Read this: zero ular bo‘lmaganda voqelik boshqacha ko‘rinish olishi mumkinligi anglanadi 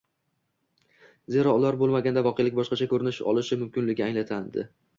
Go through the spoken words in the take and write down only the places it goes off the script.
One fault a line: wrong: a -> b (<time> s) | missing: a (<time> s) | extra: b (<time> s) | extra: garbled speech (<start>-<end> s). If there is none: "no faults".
no faults